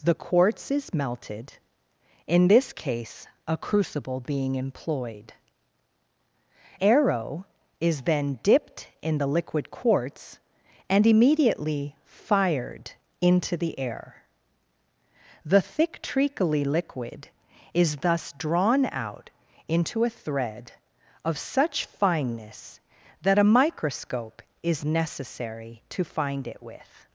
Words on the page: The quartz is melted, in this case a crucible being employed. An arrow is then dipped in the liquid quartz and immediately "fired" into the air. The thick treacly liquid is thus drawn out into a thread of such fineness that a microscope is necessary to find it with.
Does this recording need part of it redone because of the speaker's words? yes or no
yes